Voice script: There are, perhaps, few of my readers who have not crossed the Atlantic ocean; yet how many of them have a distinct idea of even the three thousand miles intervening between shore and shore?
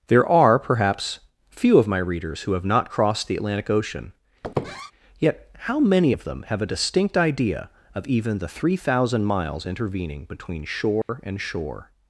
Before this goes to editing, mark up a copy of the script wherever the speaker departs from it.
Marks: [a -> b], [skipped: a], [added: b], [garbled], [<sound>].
There are, perhaps, few of my readers who have not crossed the Atlantic ocean; [squeak] yet how many of them have a distinct idea of even the three thousand miles intervening between shore [dropout] and shore?